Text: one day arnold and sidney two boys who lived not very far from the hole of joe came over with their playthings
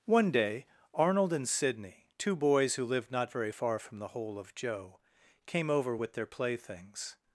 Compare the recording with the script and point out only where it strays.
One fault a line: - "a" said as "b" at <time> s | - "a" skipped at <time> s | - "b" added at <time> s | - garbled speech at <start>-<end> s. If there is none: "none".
none